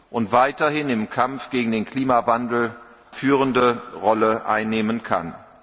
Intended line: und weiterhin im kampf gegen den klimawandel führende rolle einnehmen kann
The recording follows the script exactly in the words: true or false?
true